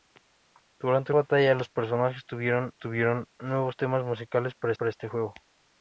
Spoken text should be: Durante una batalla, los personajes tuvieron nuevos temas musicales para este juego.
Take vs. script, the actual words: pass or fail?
fail